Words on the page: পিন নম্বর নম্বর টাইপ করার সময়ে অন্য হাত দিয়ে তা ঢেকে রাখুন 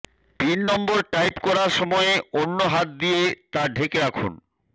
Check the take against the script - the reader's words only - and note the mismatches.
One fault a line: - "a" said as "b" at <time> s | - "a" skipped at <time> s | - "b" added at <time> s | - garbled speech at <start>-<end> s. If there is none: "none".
- "নম্বর" skipped at 1.0 s